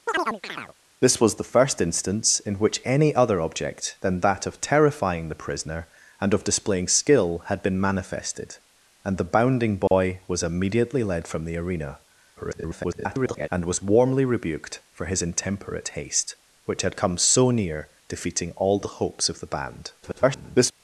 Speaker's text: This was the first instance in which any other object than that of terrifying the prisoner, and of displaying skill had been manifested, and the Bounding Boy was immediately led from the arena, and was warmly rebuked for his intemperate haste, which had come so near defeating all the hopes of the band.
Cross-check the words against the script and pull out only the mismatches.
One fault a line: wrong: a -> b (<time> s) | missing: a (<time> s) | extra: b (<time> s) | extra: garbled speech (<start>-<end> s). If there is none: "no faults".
extra: garbled speech (12.4-13.5 s)
extra: garbled speech (20.0-20.7 s)